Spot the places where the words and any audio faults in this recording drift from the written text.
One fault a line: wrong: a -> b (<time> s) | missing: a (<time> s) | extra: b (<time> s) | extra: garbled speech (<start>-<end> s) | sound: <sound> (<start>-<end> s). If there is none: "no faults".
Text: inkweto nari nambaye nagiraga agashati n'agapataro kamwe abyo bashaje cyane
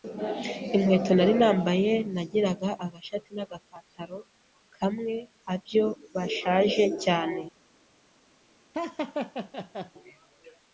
sound: laugh (8.7-9.9 s)